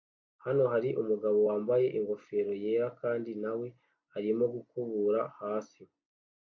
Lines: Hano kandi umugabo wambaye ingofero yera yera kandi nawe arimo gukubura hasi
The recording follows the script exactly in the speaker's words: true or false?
false